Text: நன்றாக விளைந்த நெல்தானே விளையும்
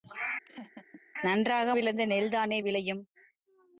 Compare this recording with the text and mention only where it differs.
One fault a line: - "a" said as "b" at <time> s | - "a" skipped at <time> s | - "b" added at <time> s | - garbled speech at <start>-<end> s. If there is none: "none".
none